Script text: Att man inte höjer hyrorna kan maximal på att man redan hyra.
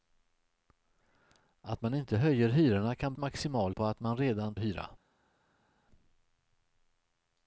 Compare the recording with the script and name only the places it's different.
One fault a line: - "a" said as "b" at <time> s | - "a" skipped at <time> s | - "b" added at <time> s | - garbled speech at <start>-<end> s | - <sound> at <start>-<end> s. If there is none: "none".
none